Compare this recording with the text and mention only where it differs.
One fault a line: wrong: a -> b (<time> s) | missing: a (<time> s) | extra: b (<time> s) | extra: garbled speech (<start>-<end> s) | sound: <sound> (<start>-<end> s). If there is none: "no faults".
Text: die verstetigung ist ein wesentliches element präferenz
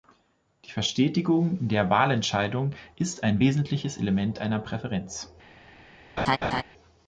extra: der wahlentscheidung (1.7 s)
extra: einer (4.4 s)
sound: laugh (6.2-6.6 s)